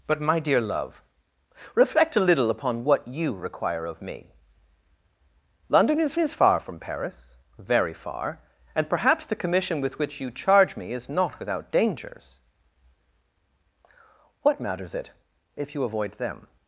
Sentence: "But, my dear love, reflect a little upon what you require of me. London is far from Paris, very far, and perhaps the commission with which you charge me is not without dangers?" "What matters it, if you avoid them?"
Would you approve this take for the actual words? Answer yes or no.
no